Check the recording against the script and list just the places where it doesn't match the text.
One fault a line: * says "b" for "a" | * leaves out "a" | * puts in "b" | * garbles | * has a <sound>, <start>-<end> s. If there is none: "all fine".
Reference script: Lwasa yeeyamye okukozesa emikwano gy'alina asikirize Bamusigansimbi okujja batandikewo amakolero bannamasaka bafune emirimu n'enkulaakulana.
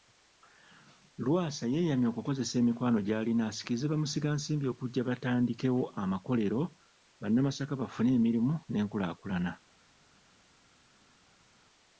all fine